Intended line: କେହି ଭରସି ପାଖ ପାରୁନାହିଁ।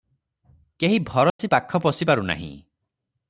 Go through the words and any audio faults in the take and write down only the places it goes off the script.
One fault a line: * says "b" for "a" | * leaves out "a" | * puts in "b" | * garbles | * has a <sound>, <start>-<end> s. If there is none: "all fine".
* has a dropout, 1.3-1.4 s
* puts in "ପଶି"